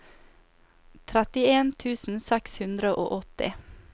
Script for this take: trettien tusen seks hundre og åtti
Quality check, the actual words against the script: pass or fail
pass